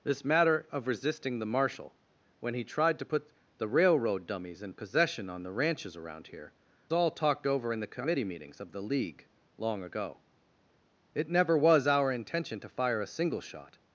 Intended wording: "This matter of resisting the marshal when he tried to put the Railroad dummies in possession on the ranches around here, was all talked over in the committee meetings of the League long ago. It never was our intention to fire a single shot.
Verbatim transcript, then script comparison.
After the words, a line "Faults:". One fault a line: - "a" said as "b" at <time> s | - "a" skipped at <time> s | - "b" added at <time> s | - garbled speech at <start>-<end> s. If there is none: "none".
"This matter of resisting the marshal when he tried to put the Railroad dummies in possession on the ranches around here, all talked over in the committee meetings of the League long ago. It never was our intention to fire a single shot.
Faults:
- "was" skipped at 6.5 s